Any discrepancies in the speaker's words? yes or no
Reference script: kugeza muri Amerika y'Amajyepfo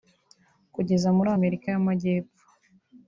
no